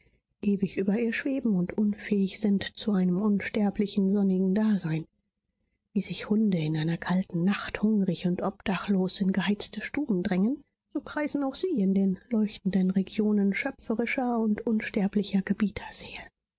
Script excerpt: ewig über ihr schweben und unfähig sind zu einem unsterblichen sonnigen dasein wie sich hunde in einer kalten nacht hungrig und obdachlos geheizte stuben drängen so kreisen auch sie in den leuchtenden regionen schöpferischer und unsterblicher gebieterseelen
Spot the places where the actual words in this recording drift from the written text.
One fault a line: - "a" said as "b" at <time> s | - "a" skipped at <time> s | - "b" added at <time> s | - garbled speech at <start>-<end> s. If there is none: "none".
- "in" added at 9.2 s